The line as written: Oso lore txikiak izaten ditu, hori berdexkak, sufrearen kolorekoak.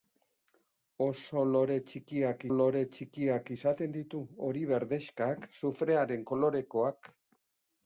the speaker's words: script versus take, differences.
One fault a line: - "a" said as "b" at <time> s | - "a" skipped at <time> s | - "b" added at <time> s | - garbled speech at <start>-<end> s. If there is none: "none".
- "lore txikiak" added at 2.5 s